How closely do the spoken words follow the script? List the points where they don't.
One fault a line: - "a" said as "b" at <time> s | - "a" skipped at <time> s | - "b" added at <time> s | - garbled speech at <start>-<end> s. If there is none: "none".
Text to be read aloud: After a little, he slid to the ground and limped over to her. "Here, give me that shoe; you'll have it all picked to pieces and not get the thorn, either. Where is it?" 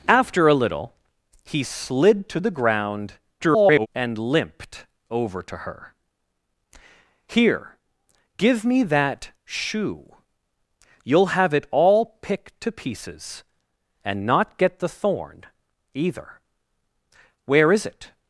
- garbled speech at 3.4-3.9 s